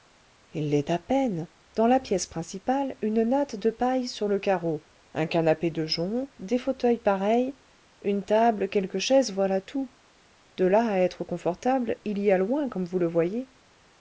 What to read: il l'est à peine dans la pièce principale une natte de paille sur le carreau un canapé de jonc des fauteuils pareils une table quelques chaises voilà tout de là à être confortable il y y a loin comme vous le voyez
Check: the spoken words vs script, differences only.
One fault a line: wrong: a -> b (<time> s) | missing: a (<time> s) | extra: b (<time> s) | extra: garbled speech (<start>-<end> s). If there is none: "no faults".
missing: y (12.3 s)